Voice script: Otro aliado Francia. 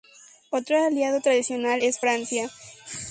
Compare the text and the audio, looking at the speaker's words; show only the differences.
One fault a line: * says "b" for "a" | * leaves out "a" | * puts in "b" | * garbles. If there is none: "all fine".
* puts in "tradicional es"